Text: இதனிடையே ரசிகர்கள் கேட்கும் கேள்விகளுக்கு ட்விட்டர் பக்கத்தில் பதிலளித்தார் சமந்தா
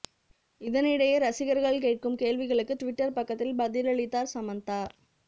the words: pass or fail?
pass